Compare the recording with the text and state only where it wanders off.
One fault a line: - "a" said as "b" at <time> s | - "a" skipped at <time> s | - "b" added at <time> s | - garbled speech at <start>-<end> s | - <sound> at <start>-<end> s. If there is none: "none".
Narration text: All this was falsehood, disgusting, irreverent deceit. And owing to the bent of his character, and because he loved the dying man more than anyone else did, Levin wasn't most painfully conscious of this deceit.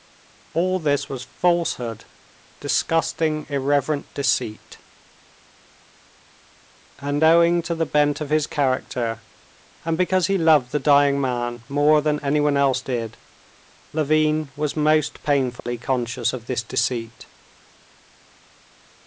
- "wasn't" said as "was" at 14.5 s
- dropout at 15.6-15.7 s